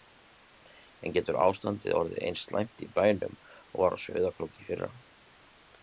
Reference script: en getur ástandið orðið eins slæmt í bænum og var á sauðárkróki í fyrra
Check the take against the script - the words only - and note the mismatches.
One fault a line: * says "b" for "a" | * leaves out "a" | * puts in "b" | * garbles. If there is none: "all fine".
all fine